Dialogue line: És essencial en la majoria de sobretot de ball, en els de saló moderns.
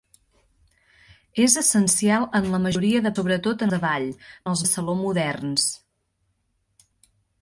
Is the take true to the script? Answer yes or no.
yes